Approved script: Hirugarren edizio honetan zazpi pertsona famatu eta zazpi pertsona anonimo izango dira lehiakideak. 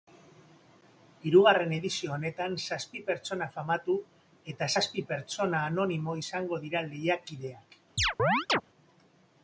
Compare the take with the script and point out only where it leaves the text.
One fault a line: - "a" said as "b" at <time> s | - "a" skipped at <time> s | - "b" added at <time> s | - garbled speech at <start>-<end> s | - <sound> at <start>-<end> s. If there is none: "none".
- chirp at 8.0-8.6 s